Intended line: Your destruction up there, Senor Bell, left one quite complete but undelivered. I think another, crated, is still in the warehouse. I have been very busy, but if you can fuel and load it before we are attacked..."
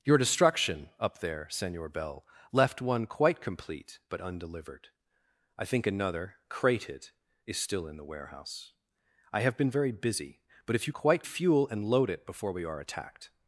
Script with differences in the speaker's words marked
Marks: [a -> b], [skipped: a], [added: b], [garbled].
Your destruction up there, Senor Bell, left one quite complete but undelivered. I think another, crated, is still in the warehouse. I have been very busy, but if you [can -> quite] fuel and load it before we are attacked..."